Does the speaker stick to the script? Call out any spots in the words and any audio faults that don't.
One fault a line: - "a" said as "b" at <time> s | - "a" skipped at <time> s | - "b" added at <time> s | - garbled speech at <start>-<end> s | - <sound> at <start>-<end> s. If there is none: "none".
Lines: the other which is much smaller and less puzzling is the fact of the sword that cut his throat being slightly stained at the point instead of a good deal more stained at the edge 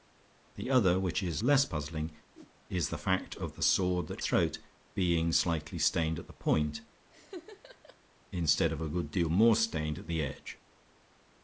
- "much smaller and" skipped at 1.4 s
- whoosh at 2.3-2.5 s
- "cut his" skipped at 4.2 s
- laugh at 7.1-8.0 s